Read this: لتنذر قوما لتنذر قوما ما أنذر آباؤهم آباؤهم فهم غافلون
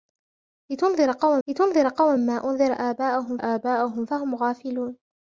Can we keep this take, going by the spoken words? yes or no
yes